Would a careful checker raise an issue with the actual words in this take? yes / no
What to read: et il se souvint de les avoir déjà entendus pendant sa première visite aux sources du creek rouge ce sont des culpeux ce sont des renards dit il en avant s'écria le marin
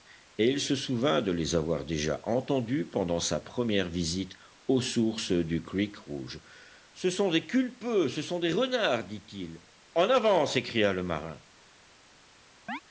no